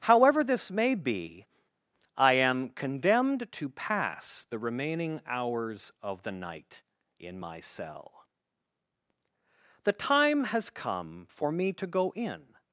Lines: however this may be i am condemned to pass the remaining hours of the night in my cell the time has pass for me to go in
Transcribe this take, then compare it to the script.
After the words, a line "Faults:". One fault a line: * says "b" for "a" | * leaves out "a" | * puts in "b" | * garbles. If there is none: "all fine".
however this may be i am condemned to pass the remaining hours of the night in my cell the time has come for me to go in
Faults:
* says "come" for "pass"